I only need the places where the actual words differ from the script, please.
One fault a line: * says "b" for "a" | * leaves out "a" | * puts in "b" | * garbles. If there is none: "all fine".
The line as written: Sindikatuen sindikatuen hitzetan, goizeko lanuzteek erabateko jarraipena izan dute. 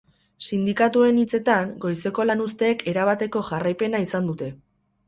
* leaves out "sindikatuen"